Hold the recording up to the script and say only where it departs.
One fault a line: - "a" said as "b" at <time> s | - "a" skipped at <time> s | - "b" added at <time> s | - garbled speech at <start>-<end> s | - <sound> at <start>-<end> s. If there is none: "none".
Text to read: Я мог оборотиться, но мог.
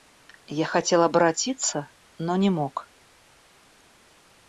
- "мог" said as "хотел" at 0.7 s
- "не" added at 2.4 s